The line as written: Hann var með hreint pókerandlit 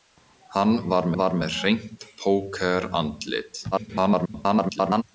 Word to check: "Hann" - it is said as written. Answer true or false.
true